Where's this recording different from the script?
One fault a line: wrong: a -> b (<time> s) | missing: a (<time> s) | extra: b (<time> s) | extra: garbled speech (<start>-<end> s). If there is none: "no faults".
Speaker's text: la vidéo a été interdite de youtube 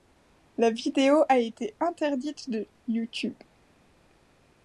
no faults